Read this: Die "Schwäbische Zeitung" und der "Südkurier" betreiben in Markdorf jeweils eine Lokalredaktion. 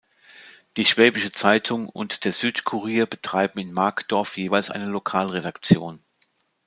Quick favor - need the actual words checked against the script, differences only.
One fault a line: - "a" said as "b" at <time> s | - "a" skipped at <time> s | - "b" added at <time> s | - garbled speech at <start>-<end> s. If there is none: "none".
none